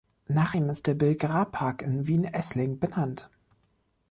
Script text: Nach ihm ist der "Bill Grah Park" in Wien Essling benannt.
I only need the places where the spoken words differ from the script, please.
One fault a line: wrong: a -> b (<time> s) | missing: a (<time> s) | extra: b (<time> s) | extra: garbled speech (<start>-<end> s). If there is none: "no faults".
no faults